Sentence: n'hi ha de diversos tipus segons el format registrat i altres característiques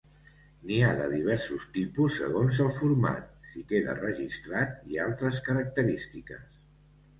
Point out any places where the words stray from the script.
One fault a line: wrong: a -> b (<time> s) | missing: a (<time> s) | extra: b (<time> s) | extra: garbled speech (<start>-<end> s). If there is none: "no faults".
extra: si queda (3.5 s)